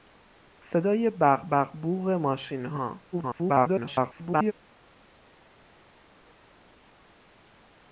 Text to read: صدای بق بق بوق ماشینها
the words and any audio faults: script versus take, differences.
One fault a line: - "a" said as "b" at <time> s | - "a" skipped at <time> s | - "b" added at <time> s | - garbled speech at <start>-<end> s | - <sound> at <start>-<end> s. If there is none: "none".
- garbled speech at 3.1-4.5 s